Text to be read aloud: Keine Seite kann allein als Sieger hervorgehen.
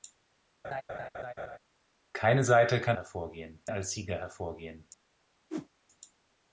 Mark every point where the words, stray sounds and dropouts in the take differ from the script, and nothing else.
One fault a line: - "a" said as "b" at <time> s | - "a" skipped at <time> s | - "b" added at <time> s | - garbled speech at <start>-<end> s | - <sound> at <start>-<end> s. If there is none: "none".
- laugh at 0.6-1.6 s
- "allein" said as "hervorgehen" at 2.9 s
- whoosh at 5.5-5.7 s